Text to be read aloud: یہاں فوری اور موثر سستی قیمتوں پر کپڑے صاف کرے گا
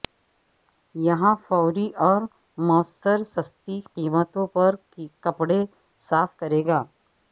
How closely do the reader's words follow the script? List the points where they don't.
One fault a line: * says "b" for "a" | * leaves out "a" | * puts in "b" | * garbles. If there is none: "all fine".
all fine